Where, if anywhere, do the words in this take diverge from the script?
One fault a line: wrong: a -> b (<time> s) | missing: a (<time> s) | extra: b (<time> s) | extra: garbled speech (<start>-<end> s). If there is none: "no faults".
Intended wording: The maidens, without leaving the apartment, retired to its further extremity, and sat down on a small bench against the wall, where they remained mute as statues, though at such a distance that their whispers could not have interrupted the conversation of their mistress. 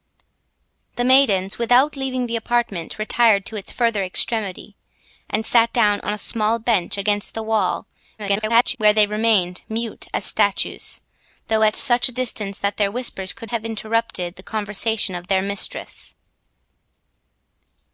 extra: garbled speech (8.2-8.8 s)
missing: not (13.5 s)